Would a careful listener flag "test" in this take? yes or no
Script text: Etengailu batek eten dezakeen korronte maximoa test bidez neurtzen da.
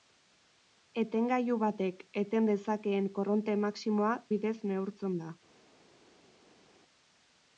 yes